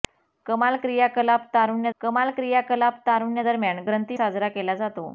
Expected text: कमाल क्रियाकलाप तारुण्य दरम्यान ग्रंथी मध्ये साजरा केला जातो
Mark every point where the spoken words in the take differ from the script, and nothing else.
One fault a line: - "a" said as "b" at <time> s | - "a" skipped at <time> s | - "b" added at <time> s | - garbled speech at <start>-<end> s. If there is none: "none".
- "कमाल क्रियाकलाप तारुण्य" added at 2.0 s
- "मध्ये" skipped at 4.2 s